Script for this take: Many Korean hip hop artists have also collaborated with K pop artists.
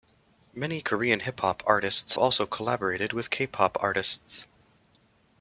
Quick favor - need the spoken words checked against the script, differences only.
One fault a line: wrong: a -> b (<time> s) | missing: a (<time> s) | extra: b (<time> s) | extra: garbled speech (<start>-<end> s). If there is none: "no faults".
missing: have (2.2 s)